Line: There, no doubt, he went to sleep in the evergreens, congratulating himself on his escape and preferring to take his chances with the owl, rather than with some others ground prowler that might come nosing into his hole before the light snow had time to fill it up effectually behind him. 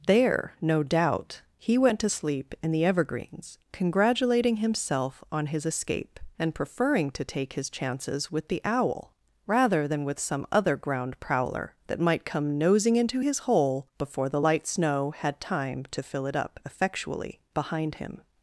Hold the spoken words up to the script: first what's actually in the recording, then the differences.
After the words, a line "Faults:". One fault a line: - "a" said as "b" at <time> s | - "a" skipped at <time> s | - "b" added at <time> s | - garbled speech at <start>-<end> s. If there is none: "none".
There, no doubt, he went to sleep in the evergreens, congratulating himself on his escape and preferring to take his chances with the owl, rather than with some other ground prowler that might come nosing into his hole before the light snow had time to fill it up effectually behind him.
Faults:
- "others" said as "other" at 10.5 s